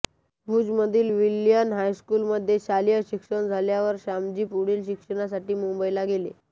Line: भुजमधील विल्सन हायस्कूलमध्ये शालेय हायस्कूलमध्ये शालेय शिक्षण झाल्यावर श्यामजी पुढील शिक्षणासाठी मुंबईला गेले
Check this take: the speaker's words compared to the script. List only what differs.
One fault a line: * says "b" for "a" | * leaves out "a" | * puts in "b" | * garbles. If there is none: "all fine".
* leaves out "हायस्कूलमध्ये शालेय"